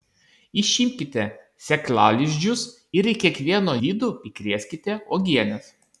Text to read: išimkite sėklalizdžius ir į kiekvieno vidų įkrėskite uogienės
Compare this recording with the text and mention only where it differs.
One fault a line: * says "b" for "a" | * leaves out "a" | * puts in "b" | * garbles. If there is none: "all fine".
all fine